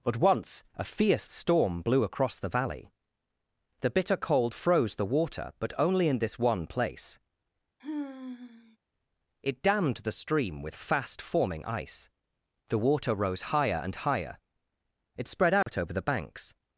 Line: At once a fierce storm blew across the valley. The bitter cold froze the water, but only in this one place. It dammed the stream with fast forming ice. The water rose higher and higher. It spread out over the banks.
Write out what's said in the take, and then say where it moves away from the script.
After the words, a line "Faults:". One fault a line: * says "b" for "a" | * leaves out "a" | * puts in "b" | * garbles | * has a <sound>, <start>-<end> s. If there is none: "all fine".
But once a fierce storm blew across the valley. The bitter cold froze the water, but only in this one place. It dammed the stream with fast forming ice. The water rose higher and higher. It spread out over the banks.
Faults:
* says "But" for "At"
* has a sigh, 7.8-8.8 s
* has a dropout, 15.6-15.7 s